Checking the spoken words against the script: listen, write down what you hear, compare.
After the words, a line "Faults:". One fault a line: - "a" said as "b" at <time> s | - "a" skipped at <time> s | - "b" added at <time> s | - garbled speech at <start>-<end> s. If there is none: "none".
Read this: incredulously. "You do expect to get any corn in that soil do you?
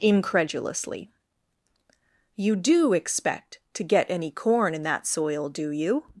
incredulously. "You do expect to get any corn in that soil do you?
Faults:
none